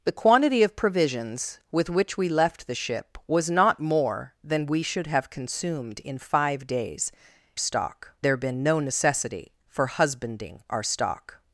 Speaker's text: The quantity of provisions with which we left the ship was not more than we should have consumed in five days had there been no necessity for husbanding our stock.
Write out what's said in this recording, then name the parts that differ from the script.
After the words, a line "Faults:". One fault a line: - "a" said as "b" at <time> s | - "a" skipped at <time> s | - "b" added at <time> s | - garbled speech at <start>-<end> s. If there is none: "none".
The quantity of provisions with which we left the ship was not more than we should have consumed in five days stock there been no necessity for husbanding our stock.
Faults:
- "had" said as "stock" at 7.6 s